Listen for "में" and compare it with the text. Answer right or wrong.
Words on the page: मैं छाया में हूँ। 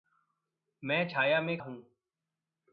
right